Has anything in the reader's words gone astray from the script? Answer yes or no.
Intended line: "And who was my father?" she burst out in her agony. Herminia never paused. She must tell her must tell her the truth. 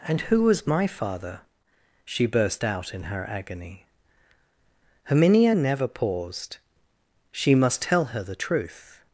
yes